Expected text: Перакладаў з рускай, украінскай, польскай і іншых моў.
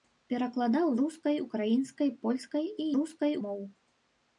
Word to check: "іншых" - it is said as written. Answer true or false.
false